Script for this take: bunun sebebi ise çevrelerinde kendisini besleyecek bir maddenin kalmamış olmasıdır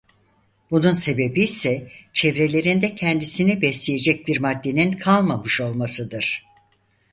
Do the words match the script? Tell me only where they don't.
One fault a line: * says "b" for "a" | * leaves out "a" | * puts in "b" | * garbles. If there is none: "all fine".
all fine